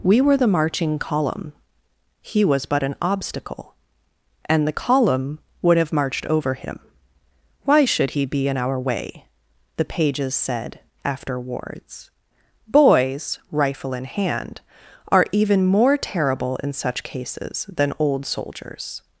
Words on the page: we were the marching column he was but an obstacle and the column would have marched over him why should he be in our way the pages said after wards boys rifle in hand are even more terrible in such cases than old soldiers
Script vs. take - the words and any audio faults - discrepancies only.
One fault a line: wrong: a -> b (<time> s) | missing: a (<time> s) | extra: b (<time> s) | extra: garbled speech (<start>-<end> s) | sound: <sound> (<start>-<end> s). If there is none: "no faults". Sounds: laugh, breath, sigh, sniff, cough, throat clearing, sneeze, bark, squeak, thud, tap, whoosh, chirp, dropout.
no faults